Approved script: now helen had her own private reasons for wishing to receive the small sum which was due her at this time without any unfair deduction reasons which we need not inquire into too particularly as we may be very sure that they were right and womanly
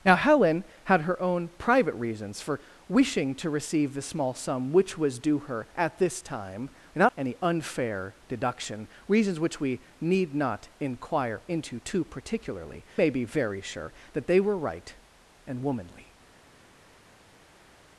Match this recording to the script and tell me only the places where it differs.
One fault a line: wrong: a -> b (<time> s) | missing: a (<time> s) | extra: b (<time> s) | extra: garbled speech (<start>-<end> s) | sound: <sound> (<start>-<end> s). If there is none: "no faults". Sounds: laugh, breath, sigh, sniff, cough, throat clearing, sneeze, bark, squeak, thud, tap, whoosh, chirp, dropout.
missing: as we (12.8 s)